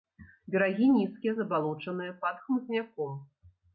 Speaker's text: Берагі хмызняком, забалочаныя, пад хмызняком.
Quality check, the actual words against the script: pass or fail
fail